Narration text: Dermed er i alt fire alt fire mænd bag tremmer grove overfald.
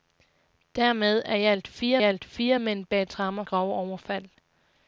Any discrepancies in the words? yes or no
no